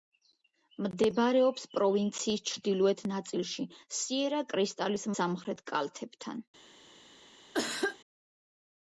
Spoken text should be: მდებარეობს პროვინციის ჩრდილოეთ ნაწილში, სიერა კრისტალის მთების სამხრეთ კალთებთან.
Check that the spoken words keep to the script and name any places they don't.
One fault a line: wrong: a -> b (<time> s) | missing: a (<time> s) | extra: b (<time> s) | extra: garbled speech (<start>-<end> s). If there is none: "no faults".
missing: მთების (5.1 s)